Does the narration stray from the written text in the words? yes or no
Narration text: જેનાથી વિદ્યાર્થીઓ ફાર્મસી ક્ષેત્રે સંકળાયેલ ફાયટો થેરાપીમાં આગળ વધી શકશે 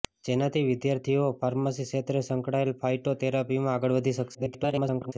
yes